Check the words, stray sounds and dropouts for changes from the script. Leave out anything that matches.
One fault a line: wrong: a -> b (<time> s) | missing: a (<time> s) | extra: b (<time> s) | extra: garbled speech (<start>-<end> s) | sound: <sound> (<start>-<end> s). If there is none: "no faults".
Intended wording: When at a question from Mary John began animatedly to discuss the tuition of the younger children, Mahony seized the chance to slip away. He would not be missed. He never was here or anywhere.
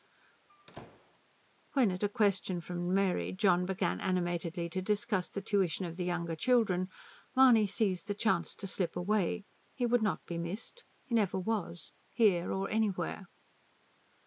sound: squeak (0.5-1.2 s)